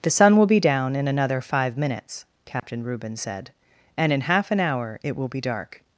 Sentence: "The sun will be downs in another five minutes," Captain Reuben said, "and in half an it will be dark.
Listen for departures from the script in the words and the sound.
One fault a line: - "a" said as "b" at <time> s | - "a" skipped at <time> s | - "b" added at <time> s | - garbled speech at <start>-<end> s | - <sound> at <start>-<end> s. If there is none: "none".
- "downs" said as "down" at 0.6 s
- dropout at 2.6-2.6 s
- "hour" added at 4.6 s